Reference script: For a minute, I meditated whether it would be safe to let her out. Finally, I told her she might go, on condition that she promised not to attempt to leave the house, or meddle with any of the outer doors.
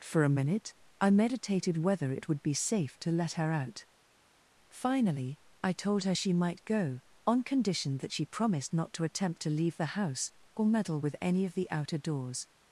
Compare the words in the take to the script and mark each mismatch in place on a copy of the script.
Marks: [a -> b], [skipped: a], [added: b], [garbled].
For a minute, I meditated whether it would be safe to let her out. Finally, I told her she might go, on condition that she promised not to attempt to leave the house, or meddle with any of the outer doors.